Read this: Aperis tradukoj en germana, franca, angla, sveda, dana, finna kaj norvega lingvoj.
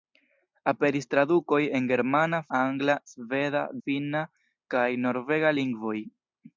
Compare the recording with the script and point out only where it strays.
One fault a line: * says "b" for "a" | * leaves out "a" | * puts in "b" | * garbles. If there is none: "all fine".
* leaves out "franca"
* leaves out "dana"